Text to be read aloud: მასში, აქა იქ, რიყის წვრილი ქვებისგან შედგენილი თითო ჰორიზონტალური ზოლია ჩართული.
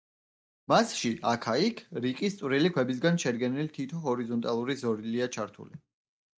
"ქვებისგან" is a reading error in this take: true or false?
false